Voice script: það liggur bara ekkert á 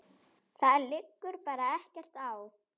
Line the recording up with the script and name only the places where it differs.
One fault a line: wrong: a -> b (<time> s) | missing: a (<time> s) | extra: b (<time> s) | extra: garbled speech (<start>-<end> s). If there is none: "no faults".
no faults